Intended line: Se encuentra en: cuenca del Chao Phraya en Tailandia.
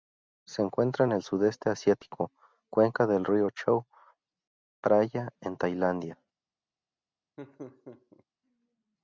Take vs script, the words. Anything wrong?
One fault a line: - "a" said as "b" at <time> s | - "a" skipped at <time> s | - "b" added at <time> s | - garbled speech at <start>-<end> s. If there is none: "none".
- "el Sudeste asiático" added at 1.1 s
- "río" added at 3.2 s